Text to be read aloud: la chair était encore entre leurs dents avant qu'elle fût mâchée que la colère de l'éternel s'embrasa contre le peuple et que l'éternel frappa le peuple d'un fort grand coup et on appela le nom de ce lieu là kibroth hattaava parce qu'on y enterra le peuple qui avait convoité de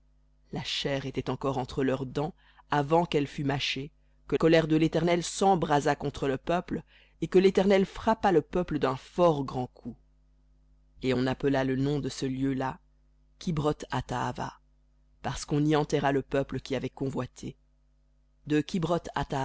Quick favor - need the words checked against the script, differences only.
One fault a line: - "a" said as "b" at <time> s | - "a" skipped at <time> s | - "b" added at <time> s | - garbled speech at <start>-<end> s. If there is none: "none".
- "la" skipped at 4.3 s